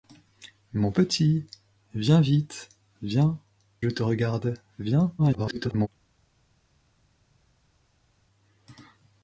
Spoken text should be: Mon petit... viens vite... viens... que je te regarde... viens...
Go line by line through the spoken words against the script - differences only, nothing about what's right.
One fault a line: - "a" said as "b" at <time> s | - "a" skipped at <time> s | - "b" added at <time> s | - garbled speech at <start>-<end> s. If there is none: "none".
- "que" skipped at 3.4 s
- garbled speech at 5.2-5.9 s